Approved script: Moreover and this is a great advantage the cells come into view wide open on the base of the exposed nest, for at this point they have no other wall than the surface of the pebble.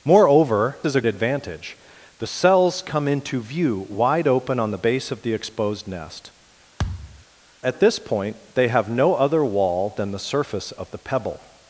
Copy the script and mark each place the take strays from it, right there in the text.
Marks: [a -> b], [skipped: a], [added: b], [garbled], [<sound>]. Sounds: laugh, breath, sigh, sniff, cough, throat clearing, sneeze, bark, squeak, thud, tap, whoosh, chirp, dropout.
Moreover [skipped: and this] is a [skipped: great] advantage the cells come into view wide open on the base of the exposed nest, [skipped: for] [thud] at this point they have no other wall than the surface of the pebble.